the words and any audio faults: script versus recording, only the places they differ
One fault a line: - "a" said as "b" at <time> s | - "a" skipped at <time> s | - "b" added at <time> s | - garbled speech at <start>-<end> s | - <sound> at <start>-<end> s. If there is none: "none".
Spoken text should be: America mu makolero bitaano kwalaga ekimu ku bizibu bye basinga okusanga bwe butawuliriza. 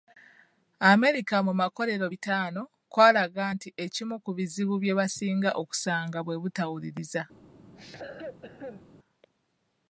- "nti" added at 3.5 s
- cough at 7.7-8.8 s